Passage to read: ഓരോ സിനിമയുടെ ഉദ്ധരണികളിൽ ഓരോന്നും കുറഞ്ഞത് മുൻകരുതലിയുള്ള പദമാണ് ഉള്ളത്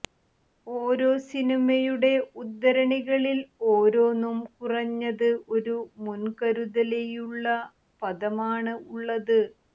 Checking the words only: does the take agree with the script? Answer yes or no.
no